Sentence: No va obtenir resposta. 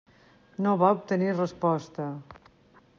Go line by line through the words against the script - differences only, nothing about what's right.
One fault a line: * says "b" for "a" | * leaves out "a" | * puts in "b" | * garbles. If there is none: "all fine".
all fine